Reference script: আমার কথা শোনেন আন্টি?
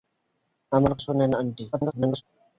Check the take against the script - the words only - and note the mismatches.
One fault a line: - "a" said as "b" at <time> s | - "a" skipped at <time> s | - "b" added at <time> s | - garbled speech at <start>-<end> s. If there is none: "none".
- "কথা" skipped at 0.9 s
- garbled speech at 1.7-2.2 s